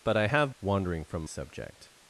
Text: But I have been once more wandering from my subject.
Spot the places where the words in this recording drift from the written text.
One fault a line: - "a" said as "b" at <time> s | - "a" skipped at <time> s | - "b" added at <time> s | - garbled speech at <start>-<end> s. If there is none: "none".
- "been once more" skipped at 0.5 s
- "my" skipped at 1.2 s